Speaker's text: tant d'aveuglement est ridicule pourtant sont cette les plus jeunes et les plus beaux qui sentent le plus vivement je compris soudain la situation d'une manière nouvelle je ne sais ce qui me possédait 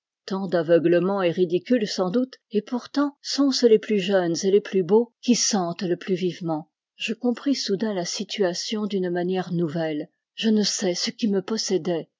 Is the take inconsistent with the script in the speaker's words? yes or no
yes